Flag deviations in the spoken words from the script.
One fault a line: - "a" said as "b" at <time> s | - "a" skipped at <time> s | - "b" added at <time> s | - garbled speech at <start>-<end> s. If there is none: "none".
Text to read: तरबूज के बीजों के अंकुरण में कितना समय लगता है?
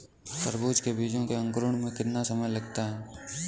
none